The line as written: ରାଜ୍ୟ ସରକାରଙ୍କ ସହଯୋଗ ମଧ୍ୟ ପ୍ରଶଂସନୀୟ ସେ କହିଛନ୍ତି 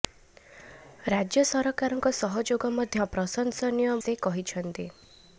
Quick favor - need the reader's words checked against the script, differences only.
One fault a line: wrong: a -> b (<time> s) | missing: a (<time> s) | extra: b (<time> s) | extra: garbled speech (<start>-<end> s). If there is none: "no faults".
no faults